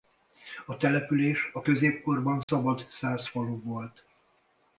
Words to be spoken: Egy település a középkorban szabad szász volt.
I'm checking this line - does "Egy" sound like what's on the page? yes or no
no